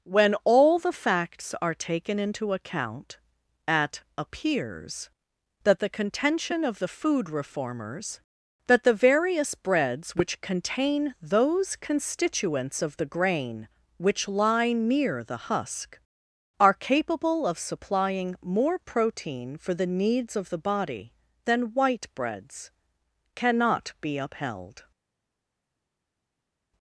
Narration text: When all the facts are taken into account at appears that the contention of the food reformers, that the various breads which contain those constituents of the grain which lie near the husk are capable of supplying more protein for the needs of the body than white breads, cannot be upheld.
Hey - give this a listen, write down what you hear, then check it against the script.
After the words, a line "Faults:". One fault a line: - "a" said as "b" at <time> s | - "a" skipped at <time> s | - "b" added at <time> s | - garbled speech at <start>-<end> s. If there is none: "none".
When all the facts are taken into account at appears that the contention of the food reformers, that the various breads which contain those constituents of the grain which lie near the husk are capable of supplying more protein for the needs of the body than white breads, cannot be upheld.
Faults:
none